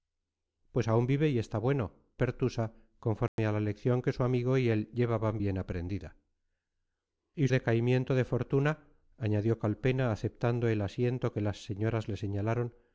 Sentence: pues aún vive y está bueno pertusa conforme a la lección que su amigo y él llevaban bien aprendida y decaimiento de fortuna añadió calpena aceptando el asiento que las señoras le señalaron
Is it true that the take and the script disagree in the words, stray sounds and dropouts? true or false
true